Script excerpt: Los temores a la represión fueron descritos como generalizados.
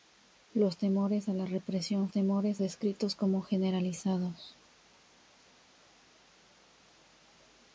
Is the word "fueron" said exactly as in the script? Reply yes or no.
no